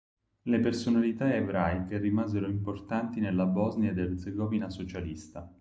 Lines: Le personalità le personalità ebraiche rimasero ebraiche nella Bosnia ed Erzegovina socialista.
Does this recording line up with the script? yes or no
no